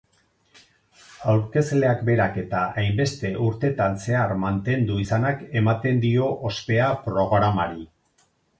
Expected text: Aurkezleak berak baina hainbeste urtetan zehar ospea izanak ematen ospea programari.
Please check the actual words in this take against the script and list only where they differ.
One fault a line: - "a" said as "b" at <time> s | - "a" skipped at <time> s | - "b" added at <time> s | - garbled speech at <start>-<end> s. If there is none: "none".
- "baina" said as "eta" at 2.4 s
- "ospea" said as "mantendu" at 4.5 s
- "dio" added at 6.1 s